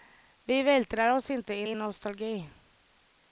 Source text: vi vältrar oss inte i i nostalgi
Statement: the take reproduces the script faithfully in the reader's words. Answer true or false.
true